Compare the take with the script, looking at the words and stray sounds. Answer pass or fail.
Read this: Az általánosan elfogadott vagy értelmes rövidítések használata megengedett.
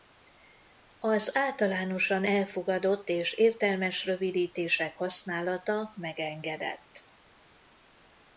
fail